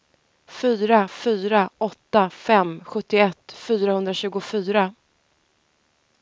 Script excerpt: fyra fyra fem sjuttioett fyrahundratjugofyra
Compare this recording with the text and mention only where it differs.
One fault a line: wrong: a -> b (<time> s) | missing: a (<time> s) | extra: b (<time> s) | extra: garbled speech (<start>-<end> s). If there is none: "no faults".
extra: åtta (1.8 s)